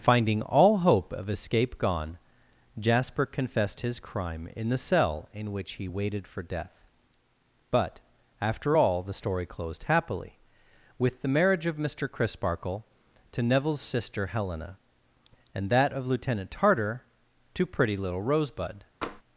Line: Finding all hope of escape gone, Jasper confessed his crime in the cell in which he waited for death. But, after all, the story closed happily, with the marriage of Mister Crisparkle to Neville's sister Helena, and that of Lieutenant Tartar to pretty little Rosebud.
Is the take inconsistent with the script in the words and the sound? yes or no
yes